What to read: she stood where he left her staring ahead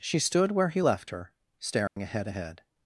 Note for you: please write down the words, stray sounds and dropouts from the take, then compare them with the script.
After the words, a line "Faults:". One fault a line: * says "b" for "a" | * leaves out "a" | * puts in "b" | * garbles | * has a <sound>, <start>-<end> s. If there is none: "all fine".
she stood where he left her staring ahead ahead
Faults:
* has a dropout, 1.9-2.0 s
* puts in "ahead"